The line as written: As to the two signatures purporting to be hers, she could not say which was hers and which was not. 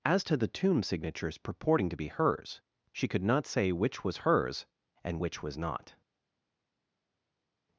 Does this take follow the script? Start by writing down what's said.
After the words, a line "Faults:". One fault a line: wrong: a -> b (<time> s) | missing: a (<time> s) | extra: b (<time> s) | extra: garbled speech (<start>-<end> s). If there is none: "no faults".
As to the tomb signatures purporting to be hers, she could not say which was hers and which was not.
Faults:
wrong: two -> tomb (0.5 s)